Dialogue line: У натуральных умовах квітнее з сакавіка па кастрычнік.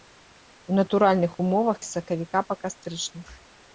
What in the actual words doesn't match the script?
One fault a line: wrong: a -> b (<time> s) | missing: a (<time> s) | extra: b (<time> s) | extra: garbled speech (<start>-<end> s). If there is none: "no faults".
missing: квітнее (1.8 s)